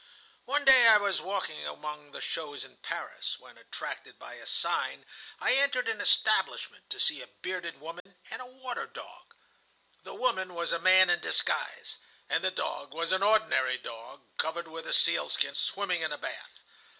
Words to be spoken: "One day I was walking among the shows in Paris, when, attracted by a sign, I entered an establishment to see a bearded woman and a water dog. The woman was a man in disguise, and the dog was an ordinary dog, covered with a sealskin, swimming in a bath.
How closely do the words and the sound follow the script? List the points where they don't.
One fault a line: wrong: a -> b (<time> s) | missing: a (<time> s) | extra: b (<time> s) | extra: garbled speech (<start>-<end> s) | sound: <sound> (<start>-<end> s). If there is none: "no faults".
sound: dropout (8.0-8.1 s)